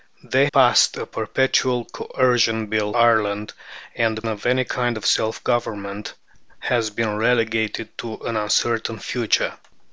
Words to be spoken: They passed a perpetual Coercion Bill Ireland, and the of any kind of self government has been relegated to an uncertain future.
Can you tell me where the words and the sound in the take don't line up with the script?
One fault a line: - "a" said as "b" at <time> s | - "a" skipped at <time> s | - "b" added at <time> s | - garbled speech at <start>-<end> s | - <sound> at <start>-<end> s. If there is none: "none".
none